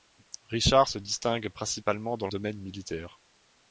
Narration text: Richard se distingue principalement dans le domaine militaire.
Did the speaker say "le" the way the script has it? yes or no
no